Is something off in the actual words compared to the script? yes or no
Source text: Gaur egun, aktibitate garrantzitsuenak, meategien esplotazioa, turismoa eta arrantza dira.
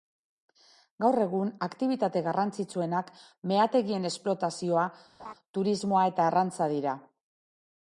no